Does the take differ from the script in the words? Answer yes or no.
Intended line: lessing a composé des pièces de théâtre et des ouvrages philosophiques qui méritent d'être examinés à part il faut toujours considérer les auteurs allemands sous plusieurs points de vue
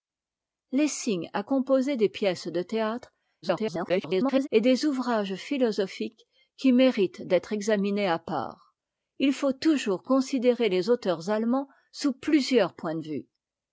yes